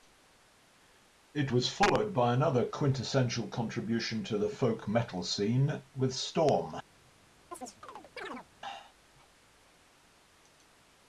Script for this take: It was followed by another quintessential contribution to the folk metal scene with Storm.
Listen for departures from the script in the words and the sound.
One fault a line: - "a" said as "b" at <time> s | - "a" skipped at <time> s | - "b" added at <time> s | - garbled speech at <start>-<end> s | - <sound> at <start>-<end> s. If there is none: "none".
- chirp at 7.5-8.5 s